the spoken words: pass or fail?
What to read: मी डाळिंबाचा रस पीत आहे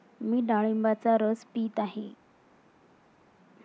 pass